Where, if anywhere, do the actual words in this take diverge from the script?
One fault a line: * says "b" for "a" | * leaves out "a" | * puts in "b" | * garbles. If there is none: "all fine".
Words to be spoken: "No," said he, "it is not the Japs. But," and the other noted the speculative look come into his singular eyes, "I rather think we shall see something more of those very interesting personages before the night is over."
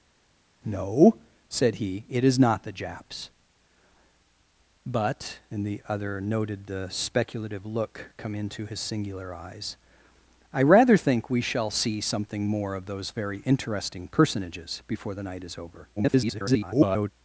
* garbles